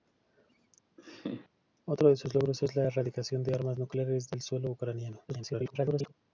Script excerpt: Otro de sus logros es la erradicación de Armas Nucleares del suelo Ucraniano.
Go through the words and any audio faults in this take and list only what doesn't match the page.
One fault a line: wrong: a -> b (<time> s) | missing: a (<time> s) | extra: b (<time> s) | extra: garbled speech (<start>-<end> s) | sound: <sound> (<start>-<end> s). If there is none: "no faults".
sound: laugh (1.0-1.5 s)
extra: garbled speech (5.3-6.1 s)